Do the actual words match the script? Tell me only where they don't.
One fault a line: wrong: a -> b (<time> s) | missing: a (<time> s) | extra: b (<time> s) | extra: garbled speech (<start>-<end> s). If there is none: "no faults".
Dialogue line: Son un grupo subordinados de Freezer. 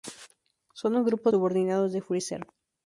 no faults